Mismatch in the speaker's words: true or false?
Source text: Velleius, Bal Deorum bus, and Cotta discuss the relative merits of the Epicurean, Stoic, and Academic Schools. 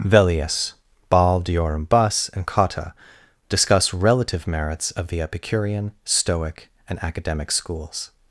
true